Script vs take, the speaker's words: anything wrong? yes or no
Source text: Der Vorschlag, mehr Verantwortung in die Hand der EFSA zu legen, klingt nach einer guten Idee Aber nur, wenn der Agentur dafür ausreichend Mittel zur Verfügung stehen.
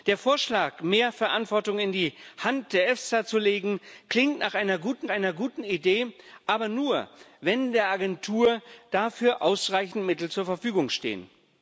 yes